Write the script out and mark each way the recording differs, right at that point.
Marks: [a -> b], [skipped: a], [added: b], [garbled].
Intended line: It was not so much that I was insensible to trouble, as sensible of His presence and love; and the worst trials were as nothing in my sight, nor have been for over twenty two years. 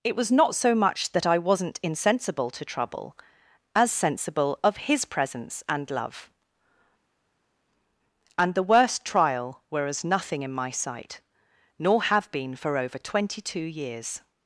It was not so much that I [was -> wasn't] insensible to trouble, as sensible of His presence and love; and the worst [trials -> trial] were as nothing in my sight, nor have been for over twenty two years.